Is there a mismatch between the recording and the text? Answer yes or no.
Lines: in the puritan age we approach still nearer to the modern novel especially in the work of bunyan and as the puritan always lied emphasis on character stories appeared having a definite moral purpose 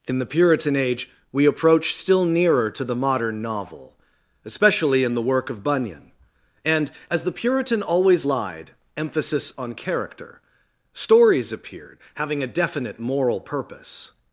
no